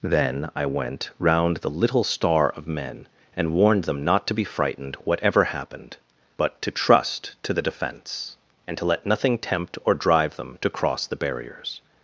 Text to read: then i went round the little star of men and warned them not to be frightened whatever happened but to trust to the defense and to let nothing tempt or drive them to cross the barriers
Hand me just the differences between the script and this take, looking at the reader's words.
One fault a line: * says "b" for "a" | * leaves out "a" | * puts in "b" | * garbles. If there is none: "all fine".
all fine